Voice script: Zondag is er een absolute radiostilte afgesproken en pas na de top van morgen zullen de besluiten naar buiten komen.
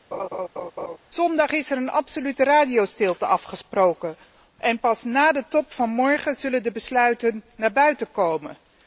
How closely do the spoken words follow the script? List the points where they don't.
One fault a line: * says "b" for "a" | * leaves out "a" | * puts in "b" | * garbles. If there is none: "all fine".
all fine